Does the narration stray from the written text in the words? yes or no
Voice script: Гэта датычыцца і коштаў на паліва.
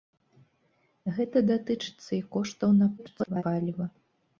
yes